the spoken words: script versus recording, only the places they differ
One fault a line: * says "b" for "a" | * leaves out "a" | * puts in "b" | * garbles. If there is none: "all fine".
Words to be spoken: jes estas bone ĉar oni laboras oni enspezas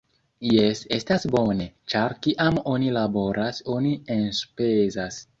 * puts in "kiam"